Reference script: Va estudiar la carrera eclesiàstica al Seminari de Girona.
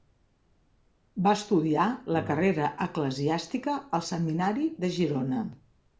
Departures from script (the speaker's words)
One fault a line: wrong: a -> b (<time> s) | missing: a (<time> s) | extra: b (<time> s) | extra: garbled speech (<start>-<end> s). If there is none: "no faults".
no faults